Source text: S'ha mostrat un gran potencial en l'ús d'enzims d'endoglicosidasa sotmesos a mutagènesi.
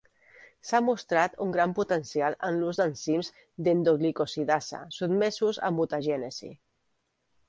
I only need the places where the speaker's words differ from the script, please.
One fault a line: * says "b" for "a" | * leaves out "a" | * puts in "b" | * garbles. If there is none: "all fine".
all fine